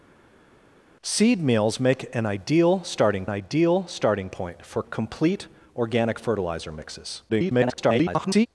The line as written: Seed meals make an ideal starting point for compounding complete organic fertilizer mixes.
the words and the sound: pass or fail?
fail